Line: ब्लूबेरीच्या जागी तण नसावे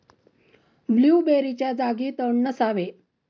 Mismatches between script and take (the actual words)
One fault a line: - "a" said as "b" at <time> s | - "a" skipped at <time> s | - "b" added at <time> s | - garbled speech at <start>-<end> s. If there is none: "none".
none